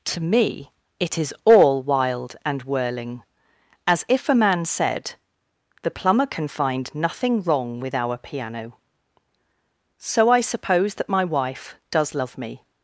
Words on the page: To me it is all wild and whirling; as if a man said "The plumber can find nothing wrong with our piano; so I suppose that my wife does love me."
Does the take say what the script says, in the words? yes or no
yes